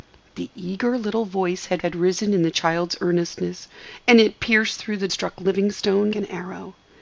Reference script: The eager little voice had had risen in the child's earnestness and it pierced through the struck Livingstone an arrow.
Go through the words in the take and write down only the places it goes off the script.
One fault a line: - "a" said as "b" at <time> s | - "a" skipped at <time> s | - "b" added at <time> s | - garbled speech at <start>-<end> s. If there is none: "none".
none